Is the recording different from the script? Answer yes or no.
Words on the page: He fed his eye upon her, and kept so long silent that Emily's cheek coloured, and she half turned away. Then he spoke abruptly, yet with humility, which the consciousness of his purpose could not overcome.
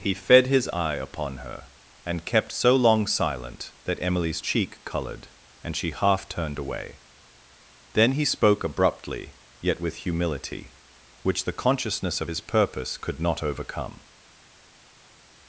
no